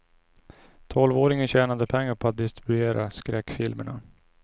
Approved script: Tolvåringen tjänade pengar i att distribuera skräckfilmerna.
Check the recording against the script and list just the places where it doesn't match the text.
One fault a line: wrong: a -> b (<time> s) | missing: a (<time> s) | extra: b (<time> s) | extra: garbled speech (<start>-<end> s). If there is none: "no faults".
wrong: i -> på (2.1 s)